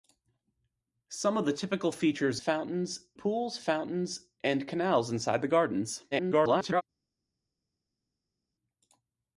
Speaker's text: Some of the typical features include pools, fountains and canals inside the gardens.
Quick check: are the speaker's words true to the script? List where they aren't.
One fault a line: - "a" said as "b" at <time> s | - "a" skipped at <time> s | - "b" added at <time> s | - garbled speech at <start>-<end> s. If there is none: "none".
- "include" said as "fountains" at 2.4 s
- garbled speech at 6.1-6.8 s